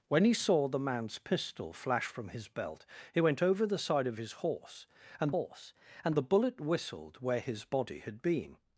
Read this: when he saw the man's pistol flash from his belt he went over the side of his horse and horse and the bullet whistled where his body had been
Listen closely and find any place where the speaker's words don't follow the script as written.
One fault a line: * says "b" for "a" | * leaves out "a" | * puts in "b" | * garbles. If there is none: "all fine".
all fine